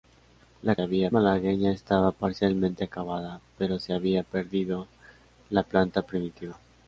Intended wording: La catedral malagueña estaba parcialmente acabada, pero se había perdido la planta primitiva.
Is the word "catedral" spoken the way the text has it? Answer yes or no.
no